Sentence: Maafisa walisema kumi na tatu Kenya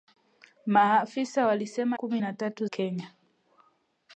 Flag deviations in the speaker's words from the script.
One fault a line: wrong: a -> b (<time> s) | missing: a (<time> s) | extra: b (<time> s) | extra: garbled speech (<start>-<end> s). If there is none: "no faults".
no faults